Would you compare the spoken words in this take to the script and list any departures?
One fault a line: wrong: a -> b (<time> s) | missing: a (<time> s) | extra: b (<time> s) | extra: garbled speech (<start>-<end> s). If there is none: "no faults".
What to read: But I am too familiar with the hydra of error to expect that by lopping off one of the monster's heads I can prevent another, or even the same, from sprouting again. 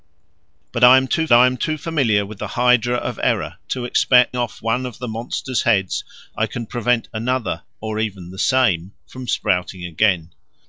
extra: I am too (1.3 s)
missing: that by lopping (4.3 s)